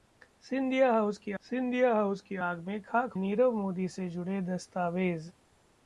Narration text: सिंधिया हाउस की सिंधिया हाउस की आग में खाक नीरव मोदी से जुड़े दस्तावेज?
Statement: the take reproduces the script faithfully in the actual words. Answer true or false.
true